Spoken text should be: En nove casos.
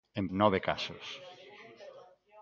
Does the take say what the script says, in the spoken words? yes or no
yes